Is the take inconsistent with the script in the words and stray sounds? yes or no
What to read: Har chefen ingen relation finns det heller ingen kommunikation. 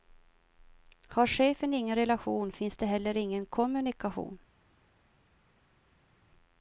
no